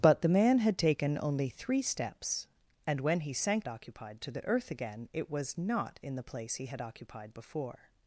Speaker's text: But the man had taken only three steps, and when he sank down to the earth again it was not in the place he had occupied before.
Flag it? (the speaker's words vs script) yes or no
yes